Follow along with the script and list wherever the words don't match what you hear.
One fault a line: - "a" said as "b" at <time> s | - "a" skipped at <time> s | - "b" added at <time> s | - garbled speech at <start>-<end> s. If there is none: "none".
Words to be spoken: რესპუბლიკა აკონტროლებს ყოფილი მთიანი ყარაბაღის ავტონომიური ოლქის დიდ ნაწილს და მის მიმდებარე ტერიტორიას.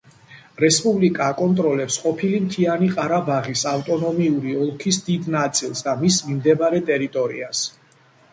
none